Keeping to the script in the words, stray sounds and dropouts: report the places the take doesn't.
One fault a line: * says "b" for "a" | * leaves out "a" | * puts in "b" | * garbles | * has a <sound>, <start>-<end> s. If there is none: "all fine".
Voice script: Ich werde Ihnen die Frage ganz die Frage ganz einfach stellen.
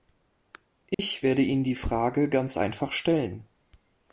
* has a dropout, 0.9-1.0 s
* leaves out "die Frage ganz"